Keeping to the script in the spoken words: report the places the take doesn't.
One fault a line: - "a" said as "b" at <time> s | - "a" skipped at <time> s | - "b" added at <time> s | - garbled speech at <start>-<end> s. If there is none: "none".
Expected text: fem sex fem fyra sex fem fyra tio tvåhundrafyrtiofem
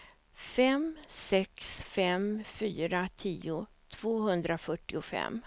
- "sex fem fyra" skipped at 3.1 s